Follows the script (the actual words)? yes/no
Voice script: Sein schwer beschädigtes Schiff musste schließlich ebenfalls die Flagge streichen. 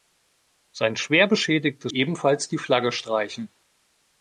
no